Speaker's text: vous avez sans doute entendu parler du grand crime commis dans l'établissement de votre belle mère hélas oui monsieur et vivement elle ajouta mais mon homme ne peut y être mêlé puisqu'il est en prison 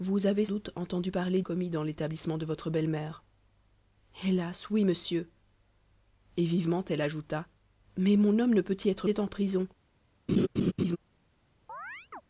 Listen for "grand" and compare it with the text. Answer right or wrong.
wrong